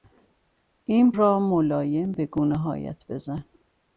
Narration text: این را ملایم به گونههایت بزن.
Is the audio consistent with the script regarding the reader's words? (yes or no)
yes